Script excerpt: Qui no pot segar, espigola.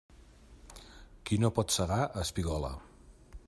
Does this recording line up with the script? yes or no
yes